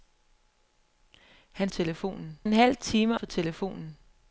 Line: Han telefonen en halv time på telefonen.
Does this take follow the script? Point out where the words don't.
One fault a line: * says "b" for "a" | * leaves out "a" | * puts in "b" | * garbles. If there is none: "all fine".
all fine